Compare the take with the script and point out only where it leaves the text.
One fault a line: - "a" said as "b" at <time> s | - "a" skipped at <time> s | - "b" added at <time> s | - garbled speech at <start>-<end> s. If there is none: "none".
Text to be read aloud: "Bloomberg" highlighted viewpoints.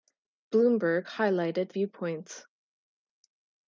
none